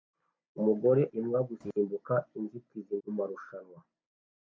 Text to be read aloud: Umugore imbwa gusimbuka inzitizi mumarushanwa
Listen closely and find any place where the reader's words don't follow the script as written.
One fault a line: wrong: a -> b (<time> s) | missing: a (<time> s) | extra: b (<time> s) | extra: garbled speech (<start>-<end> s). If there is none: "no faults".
no faults